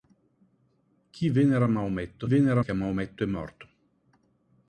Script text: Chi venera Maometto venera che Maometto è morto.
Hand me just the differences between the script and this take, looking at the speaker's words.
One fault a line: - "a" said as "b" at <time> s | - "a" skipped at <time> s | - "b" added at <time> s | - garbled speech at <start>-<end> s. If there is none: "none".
none